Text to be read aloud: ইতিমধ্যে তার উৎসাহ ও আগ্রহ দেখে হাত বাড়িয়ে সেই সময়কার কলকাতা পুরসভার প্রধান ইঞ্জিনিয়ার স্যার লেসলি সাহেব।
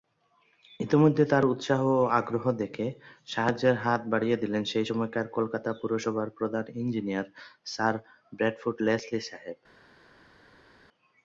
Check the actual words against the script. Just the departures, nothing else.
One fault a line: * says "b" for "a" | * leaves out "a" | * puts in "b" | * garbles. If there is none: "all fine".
* puts in "সাহায্যের"
* puts in "দিলেন"
* puts in "ব্র্যাডফোর্ড"